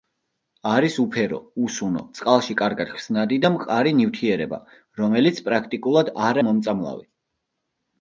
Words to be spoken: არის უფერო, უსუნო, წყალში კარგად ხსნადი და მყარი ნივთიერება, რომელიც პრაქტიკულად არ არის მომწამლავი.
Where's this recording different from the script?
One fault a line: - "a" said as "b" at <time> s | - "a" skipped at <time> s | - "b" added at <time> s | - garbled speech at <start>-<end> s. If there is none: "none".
- "არის" skipped at 6.4 s